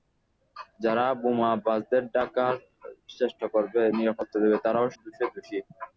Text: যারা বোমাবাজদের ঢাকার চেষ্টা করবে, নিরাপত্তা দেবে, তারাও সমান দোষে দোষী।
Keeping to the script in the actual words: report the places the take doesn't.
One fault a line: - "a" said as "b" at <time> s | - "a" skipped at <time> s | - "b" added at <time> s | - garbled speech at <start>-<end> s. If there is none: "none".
- "সমান" skipped at 4.9 s